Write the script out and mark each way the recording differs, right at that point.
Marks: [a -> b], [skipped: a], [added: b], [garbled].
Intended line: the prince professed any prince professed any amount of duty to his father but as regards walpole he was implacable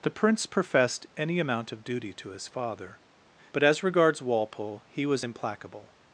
the prince professed any [skipped: prince professed any] amount of duty to his father but as regards walpole he was implacable